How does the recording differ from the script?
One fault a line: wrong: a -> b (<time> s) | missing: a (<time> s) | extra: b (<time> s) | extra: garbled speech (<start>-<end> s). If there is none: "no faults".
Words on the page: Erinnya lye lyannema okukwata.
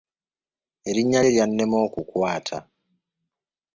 no faults